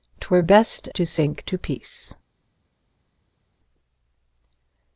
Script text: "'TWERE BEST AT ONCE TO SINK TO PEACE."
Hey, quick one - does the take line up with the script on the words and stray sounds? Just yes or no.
no